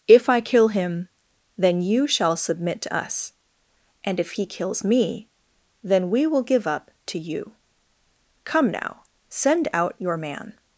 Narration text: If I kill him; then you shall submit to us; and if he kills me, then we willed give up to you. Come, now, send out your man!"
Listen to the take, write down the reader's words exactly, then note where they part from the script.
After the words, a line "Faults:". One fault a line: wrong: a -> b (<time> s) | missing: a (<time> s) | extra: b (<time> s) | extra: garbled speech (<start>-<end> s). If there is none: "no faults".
If I kill him; then you shall submit to us; and if he kills me, then we will give up to you. Come, now, send out your man!"
Faults:
wrong: willed -> will (6.3 s)